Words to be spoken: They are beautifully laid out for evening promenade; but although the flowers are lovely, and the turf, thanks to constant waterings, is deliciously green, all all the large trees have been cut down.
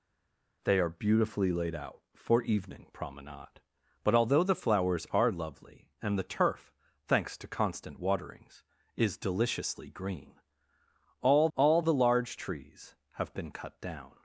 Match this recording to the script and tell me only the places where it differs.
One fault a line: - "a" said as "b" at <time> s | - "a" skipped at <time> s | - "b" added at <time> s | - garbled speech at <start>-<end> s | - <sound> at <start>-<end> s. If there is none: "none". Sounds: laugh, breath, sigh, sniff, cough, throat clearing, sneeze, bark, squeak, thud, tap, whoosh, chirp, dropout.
none